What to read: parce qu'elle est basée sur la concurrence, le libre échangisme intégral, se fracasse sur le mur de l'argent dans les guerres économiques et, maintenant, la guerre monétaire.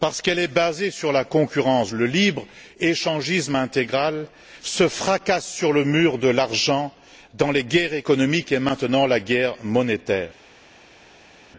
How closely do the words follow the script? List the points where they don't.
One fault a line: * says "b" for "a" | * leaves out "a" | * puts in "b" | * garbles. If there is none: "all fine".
all fine